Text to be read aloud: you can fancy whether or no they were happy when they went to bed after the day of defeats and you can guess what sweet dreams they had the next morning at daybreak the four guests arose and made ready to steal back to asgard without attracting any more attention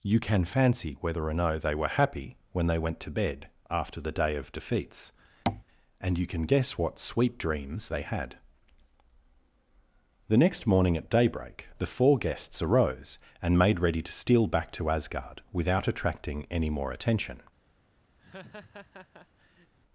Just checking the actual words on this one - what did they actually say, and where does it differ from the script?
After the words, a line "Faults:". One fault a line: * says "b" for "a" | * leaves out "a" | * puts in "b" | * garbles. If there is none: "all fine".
you can fancy whether or no they were happy when they went to bed after the day of defeats and you can guess what sweet dreams they had the next morning at daybreak the four guests arose and made ready to steal back to asgard without attracting any more attention
Faults:
all fine